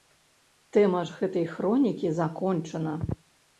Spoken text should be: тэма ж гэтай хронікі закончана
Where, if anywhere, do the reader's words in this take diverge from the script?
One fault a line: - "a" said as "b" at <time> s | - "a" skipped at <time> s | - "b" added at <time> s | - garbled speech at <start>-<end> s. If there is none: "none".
none